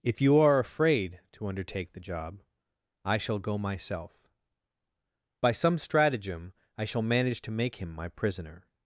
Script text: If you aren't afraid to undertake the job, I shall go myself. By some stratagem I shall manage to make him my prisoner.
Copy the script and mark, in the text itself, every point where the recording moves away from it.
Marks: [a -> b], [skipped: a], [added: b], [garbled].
If you [aren't -> are] afraid to undertake the job, I shall go myself. By some stratagem I shall manage to make him my prisoner.